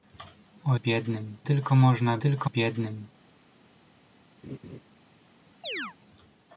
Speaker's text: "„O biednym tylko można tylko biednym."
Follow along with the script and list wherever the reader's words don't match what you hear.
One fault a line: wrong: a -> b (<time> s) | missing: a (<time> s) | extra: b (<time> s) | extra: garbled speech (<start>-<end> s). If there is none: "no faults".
no faults